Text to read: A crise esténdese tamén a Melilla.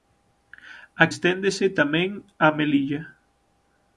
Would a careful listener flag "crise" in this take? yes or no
yes